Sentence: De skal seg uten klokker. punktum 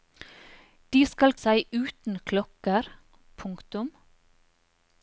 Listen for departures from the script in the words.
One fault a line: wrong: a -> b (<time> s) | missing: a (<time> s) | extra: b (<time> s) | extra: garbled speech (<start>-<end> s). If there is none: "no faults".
no faults